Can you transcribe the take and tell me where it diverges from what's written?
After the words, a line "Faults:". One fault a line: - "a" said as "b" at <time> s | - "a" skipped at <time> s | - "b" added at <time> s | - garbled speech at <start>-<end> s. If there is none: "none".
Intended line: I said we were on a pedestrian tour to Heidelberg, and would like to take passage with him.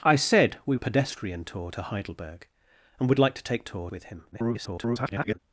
I said we a pedestrian tour to Heidelberg, and would like to take tour with him. [garbled]
Faults:
- "were on" skipped at 0.8 s
- "passage" said as "tour" at 3.6 s
- garbled speech at 4.3-5.4 s